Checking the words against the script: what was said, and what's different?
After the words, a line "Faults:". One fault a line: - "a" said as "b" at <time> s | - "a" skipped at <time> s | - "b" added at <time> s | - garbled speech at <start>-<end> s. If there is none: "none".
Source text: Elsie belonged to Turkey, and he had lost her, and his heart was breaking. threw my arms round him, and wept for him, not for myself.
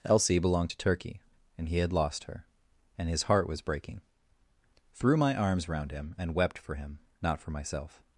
Elsie belonged to Turkey, and he had lost her, and his heart was breaking. threw my arms round him, and wept for him, not for myself.
Faults:
none